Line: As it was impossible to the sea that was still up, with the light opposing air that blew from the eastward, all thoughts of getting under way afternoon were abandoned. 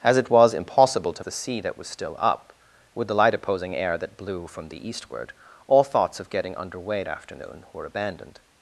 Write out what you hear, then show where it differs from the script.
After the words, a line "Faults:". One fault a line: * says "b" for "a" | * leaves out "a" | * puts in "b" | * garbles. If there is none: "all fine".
As it was impossible to the sea that was still up, with the light opposing air that blew from the eastward, all thoughts of getting under way afternoon were abandoned.
Faults:
all fine